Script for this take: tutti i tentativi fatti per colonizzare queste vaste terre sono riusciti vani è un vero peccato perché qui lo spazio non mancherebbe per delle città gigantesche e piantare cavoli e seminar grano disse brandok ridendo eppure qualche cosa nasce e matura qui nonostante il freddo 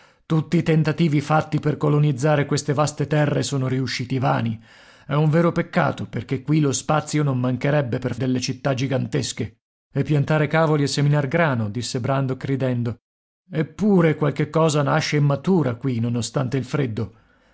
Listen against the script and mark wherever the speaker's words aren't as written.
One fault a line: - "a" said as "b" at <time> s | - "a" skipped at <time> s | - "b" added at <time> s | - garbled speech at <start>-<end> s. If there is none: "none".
none